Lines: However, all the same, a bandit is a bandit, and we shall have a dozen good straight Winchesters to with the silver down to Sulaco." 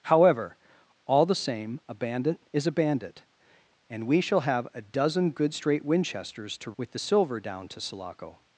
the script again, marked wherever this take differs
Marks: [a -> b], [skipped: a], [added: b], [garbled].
However, all the same, a bandit is a bandit, and we shall have a dozen good straight Winchesters to with the silver down to Sulaco."